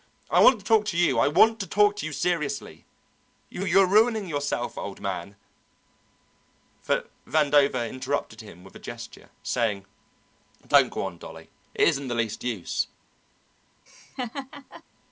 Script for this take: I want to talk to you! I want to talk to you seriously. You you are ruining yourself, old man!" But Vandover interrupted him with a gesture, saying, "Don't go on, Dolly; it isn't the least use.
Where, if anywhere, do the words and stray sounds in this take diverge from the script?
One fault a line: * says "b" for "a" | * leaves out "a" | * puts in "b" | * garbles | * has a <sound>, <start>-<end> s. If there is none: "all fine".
* has a laugh, 13.9-14.8 s